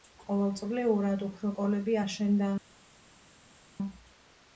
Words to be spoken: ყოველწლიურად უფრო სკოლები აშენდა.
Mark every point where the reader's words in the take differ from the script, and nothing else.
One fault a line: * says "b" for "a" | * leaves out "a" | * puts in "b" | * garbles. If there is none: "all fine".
all fine